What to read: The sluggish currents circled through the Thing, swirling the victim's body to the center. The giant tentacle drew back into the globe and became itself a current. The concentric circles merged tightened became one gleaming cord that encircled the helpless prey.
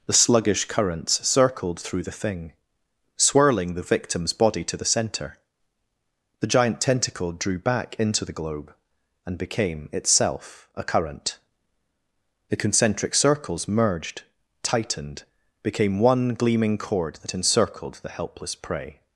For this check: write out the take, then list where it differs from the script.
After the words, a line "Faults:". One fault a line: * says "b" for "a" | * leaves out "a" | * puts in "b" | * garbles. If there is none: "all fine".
The sluggish currents circled through the Thing, swirling the victim's body to the center. The giant tentacle drew back into the globe and became itself a current. The concentric circles merged tightened became one gleaming cord that encircled the helpless prey.
Faults:
all fine